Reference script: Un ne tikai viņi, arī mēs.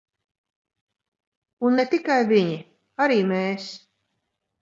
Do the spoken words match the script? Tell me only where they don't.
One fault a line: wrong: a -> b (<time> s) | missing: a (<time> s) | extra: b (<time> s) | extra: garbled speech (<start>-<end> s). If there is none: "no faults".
no faults